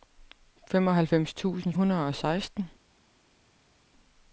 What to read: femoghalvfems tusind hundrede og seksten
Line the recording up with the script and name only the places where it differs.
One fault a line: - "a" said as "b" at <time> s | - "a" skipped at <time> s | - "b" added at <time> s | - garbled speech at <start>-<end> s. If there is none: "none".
none